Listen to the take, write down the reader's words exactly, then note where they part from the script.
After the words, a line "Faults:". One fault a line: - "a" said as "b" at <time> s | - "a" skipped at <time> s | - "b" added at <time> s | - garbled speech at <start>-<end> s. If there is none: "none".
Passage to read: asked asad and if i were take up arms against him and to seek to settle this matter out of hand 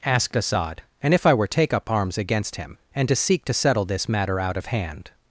asked asad and if i were take up arms against him and to seek to settle this matter out of hand
Faults:
none